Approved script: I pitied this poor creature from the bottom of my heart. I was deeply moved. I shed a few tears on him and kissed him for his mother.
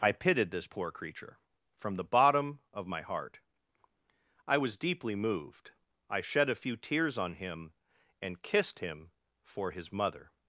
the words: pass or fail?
pass